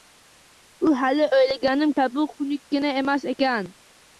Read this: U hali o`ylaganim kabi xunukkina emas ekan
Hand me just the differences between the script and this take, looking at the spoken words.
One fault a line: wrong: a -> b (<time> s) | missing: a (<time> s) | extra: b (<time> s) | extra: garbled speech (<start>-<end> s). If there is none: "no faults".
no faults